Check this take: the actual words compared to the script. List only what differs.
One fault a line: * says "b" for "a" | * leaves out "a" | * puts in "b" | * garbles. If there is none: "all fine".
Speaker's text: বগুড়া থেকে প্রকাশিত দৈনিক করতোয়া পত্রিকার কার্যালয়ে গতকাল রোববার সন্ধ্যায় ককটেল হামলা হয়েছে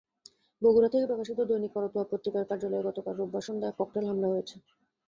all fine